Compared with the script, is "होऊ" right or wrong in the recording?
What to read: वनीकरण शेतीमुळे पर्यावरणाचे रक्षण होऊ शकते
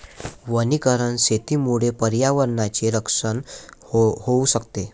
right